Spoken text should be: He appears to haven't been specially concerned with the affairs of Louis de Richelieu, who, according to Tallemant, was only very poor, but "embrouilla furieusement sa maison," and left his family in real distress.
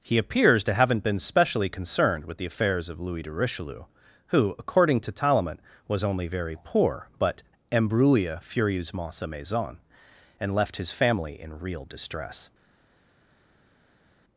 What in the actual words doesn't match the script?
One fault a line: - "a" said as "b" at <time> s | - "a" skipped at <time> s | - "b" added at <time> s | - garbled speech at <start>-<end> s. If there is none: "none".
none